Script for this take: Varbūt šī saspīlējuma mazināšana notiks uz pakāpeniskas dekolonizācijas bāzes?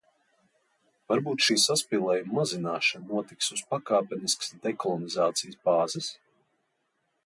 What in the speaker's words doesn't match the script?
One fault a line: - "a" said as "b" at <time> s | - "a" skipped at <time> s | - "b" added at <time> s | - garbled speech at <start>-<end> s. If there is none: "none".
none